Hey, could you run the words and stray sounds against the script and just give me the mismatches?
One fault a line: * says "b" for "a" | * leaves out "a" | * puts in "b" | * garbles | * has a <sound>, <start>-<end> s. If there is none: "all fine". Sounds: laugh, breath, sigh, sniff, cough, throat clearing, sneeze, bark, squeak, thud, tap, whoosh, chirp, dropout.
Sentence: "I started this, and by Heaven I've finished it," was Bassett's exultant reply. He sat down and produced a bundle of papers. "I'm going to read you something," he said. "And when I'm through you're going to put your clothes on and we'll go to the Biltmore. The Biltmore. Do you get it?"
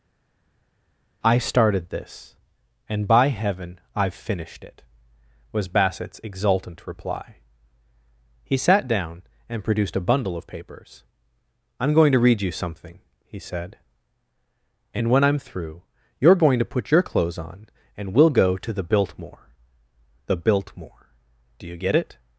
all fine